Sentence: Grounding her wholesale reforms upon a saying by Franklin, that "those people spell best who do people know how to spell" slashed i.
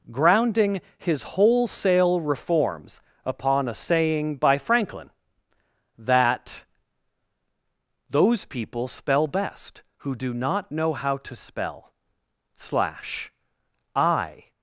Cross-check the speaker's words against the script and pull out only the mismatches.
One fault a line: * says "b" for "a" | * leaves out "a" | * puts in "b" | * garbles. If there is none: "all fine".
* says "his" for "her"
* says "not" for "people"
* says "slash" for "slashed"